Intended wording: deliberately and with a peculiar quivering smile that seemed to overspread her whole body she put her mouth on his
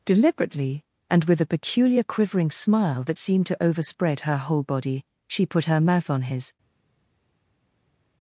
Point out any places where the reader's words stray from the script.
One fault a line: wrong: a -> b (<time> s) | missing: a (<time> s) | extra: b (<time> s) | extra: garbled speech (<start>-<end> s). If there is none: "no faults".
no faults